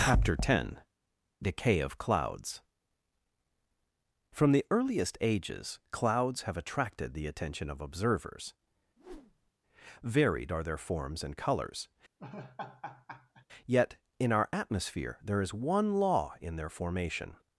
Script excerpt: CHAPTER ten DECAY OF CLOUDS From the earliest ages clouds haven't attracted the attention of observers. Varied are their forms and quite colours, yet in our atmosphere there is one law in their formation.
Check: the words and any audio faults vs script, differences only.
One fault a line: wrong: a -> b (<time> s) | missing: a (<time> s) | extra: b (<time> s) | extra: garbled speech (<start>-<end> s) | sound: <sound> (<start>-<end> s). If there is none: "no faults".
wrong: haven't -> have (6.4 s)
sound: whoosh (9.0-9.5 s)
missing: quite (11.4 s)
sound: laugh (12.2-13.5 s)